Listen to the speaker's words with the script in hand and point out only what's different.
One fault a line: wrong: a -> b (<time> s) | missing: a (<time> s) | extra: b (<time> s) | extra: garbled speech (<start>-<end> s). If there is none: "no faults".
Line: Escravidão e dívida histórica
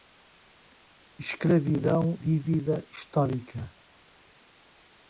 missing: e (2.2 s)